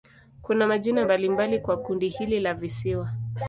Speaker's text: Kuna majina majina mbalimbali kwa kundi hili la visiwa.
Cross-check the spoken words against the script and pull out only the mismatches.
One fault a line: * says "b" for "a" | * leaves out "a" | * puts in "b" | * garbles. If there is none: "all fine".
* leaves out "majina"